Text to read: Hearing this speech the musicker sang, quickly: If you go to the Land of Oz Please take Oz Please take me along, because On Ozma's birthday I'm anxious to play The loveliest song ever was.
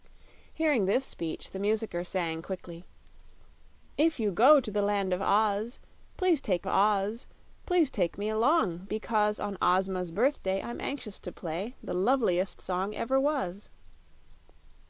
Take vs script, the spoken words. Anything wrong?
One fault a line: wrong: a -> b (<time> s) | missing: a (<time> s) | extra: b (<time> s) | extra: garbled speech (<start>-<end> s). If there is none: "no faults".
no faults